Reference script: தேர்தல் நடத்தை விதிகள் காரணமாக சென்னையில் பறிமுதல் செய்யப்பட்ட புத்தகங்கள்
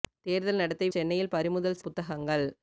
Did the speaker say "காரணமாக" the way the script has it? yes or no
no